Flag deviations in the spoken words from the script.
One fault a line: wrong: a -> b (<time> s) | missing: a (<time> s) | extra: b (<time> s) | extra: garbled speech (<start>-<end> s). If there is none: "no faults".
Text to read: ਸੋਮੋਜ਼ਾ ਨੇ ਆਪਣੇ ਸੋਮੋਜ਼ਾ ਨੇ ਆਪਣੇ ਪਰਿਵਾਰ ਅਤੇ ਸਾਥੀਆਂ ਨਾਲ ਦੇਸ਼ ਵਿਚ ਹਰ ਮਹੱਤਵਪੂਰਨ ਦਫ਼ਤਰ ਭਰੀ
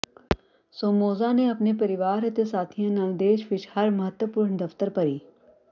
missing: ਸੋਮੋਜ਼ਾ ਨੇ ਆਪਣੇ (1.7 s)